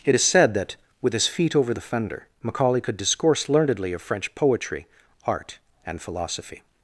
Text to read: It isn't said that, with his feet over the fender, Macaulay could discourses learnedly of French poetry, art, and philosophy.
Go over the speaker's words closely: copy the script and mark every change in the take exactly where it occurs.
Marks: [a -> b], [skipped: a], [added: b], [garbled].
It [isn't -> is] said that, with his feet over the fender, Macaulay could [discourses -> discourse] learnedly of French poetry, art, and philosophy.